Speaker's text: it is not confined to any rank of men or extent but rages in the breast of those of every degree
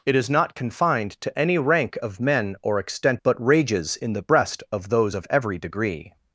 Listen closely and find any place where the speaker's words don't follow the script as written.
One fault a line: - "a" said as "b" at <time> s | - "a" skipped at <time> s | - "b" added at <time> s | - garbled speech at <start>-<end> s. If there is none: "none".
none